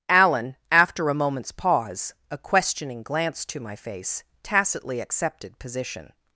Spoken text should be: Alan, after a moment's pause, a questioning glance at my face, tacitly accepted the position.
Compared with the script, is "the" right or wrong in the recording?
wrong